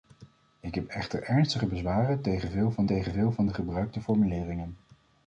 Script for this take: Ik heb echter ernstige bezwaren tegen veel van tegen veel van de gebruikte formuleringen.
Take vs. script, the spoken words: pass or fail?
pass